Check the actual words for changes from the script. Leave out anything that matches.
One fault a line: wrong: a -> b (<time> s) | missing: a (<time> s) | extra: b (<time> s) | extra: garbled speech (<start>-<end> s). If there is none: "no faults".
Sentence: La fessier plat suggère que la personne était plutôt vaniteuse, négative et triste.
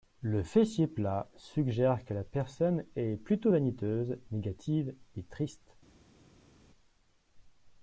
wrong: La -> Le (0.2 s)
wrong: était -> est (3.0 s)